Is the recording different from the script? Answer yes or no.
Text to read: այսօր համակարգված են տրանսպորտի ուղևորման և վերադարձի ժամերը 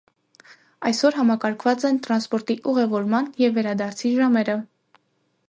no